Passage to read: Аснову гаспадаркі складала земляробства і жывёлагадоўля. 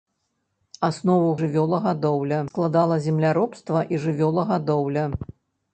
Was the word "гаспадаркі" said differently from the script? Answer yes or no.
yes